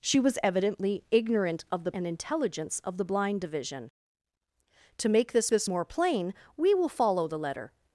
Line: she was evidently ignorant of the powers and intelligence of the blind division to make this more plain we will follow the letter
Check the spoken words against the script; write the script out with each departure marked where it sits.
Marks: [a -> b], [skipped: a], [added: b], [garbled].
she was evidently ignorant of the [skipped: powers] and intelligence of the blind division to make this [added: this] more plain we will follow the letter